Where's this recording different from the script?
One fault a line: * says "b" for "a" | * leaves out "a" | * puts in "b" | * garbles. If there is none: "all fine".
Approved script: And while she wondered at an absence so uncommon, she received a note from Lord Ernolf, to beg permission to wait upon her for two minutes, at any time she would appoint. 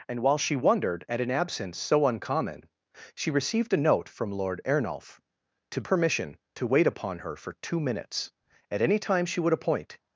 * leaves out "beg"